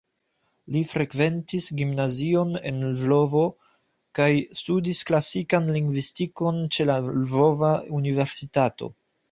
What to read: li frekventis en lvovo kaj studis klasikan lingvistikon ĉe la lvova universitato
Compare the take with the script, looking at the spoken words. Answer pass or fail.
fail